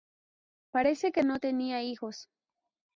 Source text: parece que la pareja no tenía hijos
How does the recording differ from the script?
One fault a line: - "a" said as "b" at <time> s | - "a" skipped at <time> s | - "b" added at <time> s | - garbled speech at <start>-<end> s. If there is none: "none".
- "la pareja" skipped at 1.2 s